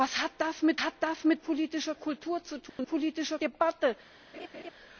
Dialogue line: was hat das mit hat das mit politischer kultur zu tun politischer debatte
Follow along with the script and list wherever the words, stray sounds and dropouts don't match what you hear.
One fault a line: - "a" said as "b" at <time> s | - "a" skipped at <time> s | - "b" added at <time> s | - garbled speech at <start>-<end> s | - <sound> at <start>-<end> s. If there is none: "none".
- dropout at 2.7-2.8 s
- laugh at 4.3-4.7 s